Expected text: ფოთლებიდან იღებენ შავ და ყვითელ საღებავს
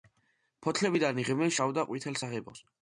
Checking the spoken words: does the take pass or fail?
pass